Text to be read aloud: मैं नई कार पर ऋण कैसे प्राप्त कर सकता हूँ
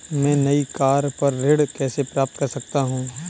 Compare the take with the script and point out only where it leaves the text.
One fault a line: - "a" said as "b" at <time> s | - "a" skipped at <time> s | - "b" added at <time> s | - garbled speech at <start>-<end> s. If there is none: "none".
none